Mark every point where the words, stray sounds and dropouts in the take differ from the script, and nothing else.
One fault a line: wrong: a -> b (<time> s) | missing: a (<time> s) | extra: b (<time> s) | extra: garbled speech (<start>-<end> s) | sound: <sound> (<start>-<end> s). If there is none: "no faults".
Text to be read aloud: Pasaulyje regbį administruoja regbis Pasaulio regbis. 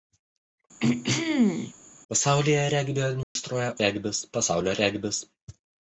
sound: throat clearing (0.8-1.7 s)
sound: dropout (3.2-3.4 s)